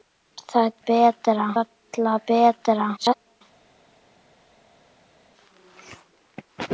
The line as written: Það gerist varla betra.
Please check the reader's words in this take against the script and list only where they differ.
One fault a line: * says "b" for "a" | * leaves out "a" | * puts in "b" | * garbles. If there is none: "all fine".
* says "betra" for "gerist"
* garbles